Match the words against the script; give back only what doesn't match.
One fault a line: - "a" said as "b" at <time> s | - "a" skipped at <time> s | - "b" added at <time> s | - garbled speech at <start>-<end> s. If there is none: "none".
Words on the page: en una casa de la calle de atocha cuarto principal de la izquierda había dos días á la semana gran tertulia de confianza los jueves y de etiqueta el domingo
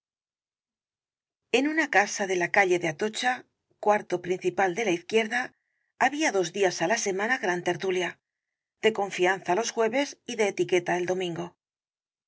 none